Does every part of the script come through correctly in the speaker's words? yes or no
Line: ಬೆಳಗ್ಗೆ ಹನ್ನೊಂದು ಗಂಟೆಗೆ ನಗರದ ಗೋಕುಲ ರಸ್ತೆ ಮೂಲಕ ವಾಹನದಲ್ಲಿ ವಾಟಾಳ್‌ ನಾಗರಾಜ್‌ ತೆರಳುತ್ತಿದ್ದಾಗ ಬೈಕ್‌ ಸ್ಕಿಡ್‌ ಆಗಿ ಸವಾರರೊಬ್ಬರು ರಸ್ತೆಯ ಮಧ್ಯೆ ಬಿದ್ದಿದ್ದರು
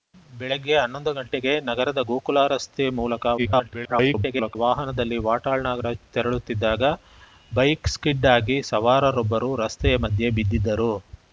no